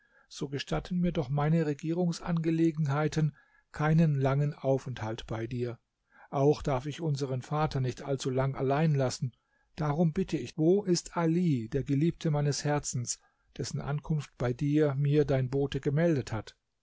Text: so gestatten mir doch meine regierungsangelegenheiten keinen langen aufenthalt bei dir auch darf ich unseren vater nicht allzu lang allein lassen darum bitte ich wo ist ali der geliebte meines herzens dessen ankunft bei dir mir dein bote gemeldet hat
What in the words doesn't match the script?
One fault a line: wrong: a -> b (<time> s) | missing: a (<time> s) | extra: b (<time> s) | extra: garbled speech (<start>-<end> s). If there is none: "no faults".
no faults